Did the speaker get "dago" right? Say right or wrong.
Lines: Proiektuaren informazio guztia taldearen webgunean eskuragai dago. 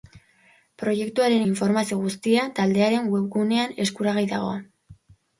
right